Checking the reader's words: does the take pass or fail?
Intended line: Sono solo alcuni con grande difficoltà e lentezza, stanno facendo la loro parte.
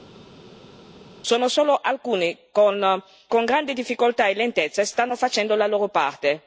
pass